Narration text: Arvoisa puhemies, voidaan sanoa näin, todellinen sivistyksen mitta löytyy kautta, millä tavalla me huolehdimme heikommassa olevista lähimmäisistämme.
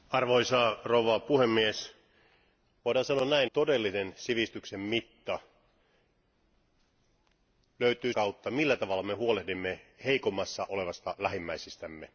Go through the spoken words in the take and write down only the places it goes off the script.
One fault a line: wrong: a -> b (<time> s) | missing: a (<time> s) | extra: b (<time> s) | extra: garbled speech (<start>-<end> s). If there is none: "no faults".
no faults